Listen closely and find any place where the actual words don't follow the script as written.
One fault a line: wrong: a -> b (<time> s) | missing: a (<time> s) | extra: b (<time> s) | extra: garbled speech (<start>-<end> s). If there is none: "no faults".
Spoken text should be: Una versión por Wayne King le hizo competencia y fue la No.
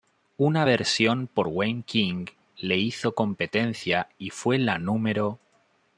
no faults